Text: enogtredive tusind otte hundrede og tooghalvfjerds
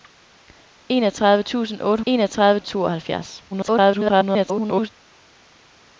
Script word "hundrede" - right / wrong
wrong